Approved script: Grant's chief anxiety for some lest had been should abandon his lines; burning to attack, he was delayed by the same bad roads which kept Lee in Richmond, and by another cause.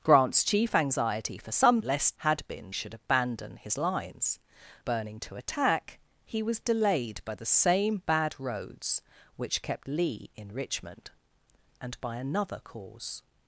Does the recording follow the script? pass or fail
pass